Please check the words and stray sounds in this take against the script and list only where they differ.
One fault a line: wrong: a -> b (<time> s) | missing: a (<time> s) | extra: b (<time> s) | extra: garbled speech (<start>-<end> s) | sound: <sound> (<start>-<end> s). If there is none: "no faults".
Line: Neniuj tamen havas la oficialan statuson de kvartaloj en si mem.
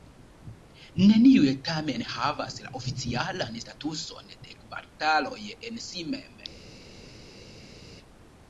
no faults